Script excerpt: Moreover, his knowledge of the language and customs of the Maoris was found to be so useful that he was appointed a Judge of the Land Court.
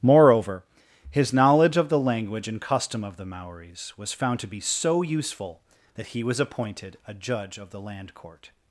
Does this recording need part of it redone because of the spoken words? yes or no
yes